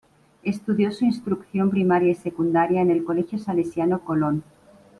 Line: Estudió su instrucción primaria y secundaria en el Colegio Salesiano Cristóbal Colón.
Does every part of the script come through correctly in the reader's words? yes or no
no